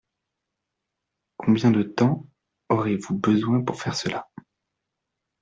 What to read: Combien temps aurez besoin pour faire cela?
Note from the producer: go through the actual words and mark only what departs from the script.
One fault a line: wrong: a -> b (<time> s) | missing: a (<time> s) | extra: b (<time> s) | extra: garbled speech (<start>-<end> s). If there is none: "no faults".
extra: de (1.7 s)
extra: vous (3.0 s)